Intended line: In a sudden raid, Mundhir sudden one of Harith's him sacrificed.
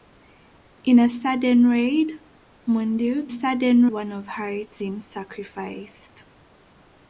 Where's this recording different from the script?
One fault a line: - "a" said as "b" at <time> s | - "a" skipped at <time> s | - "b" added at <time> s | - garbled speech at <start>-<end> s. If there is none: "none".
none